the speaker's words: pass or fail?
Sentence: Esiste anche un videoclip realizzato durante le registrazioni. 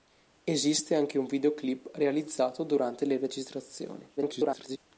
fail